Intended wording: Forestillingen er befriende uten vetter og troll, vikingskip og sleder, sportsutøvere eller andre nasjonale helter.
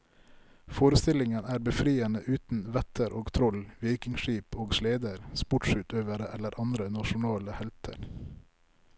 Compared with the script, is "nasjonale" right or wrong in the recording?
right